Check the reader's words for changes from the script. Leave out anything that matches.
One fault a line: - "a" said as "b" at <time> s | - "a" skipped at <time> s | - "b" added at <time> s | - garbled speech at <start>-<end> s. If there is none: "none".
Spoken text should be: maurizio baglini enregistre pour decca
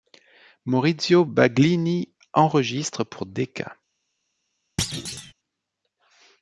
none